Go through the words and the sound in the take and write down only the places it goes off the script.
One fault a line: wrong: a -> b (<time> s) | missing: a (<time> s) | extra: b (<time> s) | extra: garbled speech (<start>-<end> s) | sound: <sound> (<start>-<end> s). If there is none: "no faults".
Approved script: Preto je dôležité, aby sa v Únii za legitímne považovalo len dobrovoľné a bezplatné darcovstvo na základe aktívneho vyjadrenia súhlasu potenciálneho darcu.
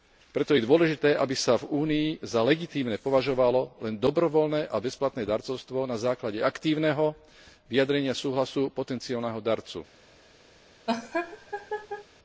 sound: laugh (10.9-12.1 s)